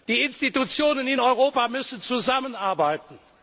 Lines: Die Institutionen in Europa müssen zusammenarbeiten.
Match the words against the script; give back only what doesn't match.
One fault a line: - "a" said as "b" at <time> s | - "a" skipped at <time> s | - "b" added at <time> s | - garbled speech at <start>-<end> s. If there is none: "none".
none